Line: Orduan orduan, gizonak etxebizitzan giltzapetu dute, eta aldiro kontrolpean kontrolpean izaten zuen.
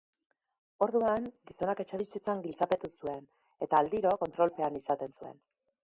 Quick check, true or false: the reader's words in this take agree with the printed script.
false